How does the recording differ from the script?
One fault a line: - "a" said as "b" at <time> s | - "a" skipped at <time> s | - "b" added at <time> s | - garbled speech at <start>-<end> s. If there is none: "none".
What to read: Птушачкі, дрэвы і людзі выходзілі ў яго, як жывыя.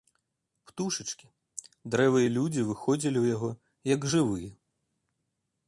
none